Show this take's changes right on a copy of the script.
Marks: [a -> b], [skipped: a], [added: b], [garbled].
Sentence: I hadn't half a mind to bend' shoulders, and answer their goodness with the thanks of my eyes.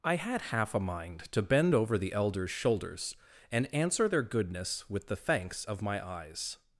I [hadn't -> had] half a mind to bend' [added: over the elders] shoulders, and answer their goodness with the thanks of my eyes.